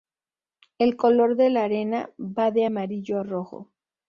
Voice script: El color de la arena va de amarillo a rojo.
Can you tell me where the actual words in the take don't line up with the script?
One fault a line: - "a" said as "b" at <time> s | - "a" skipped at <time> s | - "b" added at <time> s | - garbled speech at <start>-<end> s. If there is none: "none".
none